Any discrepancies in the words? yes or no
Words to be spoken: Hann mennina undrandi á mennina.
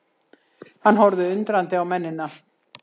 yes